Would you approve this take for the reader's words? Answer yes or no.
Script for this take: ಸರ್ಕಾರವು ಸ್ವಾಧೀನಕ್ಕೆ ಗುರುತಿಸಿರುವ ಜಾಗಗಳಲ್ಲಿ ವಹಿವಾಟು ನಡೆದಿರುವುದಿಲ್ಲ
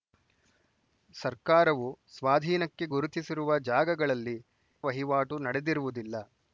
yes